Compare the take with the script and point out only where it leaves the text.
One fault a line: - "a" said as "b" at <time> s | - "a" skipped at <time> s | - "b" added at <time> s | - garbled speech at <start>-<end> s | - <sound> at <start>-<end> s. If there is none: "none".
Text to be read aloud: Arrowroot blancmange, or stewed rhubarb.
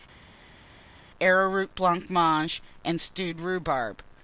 - "or" said as "and" at 2.8 s